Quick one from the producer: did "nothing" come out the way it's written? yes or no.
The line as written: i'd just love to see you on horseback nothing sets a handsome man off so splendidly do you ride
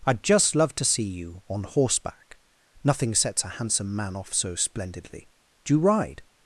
yes